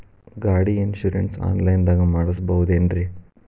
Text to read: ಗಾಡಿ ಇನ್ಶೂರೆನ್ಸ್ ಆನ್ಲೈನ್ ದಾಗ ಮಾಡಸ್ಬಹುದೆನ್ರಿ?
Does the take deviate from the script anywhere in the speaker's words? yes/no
no